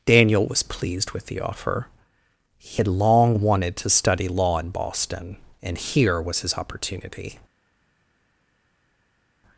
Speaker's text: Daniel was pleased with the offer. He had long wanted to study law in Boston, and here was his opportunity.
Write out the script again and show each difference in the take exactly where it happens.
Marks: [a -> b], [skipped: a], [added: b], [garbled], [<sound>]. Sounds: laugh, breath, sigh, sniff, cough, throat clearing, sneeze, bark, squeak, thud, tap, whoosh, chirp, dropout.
Daniel was pleased with the offer. He had long wanted to study law in Boston, and here was his opportunity.